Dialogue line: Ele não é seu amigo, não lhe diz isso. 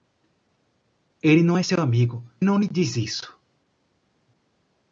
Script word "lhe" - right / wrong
right